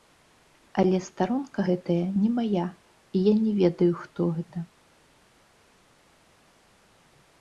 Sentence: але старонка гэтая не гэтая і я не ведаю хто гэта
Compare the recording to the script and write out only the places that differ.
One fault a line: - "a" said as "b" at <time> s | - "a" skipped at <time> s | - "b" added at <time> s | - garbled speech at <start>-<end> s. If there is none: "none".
- "гэтая" said as "мая" at 2.4 s